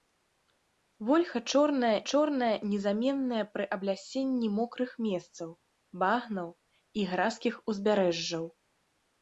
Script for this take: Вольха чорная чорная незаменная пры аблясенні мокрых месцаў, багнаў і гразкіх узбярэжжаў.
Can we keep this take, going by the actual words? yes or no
yes